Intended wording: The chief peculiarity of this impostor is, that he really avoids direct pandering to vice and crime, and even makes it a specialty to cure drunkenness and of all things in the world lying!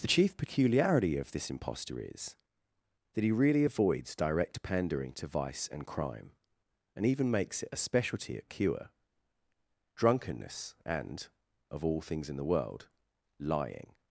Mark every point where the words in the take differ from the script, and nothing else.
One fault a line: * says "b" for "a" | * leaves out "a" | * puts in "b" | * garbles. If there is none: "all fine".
* says "at" for "to"